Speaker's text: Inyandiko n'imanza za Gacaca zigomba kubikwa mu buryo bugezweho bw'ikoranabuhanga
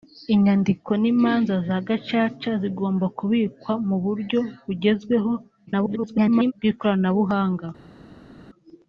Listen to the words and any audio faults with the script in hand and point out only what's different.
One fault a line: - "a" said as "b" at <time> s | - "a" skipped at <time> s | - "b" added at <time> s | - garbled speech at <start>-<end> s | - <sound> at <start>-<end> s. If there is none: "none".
- garbled speech at 5.7-6.5 s